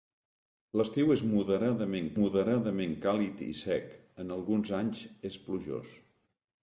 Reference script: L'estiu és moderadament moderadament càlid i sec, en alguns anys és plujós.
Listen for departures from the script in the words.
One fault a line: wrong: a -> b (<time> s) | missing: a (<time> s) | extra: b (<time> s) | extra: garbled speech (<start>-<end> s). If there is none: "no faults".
no faults